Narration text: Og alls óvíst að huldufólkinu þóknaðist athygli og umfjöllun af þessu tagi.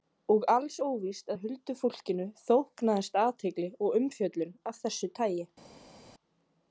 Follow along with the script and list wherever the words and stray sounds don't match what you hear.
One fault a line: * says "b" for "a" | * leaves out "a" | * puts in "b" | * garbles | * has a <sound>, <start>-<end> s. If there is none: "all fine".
all fine